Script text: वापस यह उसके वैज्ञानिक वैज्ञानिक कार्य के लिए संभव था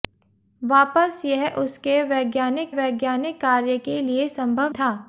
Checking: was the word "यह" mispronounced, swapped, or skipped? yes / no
no